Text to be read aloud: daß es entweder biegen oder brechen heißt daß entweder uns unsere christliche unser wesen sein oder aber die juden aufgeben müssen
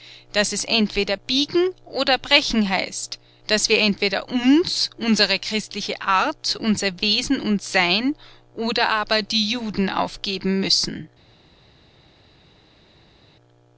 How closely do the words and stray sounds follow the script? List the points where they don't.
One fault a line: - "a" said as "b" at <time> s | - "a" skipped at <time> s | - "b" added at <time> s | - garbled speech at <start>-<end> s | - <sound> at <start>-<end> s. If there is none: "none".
- "wir" added at 3.7 s
- "art" added at 6.0 s
- "und" added at 7.4 s